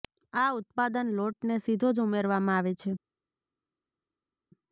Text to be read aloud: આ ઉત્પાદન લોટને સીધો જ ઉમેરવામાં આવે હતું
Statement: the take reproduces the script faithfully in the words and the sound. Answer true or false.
false